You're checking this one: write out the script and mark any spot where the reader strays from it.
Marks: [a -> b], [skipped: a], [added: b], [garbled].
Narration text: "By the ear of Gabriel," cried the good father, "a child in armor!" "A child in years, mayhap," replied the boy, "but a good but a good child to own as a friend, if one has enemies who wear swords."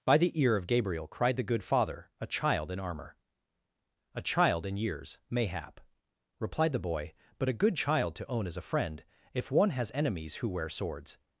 "By the ear of Gabriel," cried the good father, "a child in armor!" "A child in years, mayhap," replied the boy, "but a good [skipped: but a good] child to own as a friend, if one has enemies who wear swords."